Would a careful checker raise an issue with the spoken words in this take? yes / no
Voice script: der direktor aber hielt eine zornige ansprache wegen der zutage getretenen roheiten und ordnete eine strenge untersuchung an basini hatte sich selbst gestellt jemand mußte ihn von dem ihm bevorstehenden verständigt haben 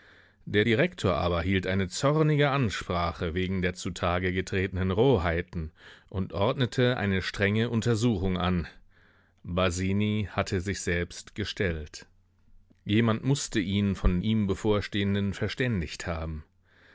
yes